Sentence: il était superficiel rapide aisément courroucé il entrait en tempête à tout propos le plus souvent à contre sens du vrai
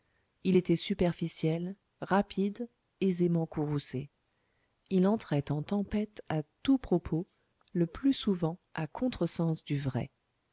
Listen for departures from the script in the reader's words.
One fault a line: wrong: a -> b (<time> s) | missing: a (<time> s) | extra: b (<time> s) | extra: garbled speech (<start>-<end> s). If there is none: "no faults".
no faults